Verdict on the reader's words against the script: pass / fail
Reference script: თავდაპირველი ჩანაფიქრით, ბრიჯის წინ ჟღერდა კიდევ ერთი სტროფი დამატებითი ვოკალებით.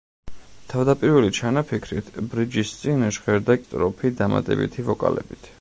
fail